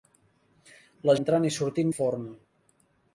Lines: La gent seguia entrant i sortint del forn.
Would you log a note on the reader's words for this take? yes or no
yes